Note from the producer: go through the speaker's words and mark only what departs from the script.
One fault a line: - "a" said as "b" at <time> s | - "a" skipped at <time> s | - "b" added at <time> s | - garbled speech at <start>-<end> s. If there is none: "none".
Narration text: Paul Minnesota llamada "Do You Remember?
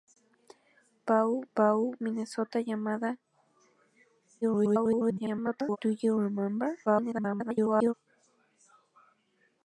- "paul" added at 1.5 s
- garbled speech at 4.4-5.8 s
- garbled speech at 6.9-7.9 s